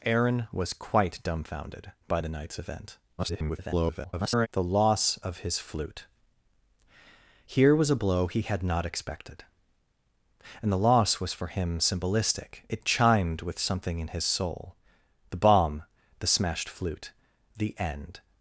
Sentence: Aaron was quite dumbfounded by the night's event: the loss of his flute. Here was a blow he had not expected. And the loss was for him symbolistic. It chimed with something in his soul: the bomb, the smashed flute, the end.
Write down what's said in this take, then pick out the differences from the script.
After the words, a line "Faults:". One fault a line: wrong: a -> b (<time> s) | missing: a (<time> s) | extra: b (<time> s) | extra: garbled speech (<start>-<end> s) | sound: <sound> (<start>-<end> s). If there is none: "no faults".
Aaron was quite dumbfounded by the night's event: [garbled] the loss of his flute. Here was a blow he had not expected. And the loss was for him symbolistic. It chimed with something in his soul: the bomb, the smashed flute, the end.
Faults:
extra: garbled speech (3.2-4.5 s)